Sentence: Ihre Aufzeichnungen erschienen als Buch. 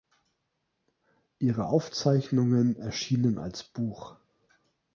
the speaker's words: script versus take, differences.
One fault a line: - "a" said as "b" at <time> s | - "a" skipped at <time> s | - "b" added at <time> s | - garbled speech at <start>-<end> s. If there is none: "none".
none